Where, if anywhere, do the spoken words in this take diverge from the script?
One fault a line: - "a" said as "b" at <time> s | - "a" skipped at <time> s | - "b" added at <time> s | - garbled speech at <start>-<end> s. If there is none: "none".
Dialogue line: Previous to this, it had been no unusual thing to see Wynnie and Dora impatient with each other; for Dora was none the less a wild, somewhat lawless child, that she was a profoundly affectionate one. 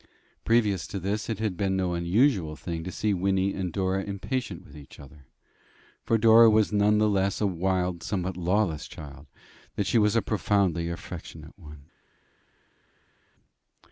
none